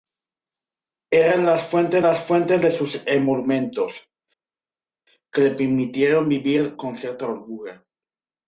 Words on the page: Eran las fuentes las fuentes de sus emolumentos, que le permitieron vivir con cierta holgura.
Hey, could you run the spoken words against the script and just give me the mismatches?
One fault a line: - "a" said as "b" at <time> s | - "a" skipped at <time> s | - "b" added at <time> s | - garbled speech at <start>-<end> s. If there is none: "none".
none